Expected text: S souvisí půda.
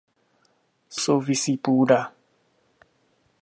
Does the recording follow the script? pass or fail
pass